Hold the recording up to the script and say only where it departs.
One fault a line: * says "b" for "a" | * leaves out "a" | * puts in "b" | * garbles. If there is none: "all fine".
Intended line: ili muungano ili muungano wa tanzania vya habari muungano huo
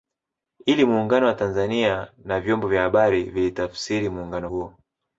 * says "wa tanzania na vyombo" for "ili muungano wa tanzania"
* puts in "vilitafsiri"